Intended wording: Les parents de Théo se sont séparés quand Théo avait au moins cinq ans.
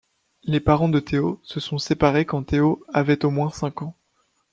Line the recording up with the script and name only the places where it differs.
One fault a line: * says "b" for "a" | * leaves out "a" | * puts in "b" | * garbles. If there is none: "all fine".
all fine